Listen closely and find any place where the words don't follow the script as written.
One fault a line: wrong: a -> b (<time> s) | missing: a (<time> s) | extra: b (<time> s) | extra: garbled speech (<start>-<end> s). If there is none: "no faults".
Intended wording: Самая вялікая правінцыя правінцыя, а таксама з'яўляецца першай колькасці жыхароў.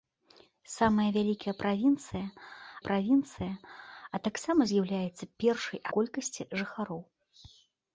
no faults